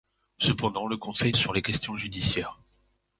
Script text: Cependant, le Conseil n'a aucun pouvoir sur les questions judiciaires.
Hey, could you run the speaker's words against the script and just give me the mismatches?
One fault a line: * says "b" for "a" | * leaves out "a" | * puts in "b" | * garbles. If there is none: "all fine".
* leaves out "n'a aucun pouvoir"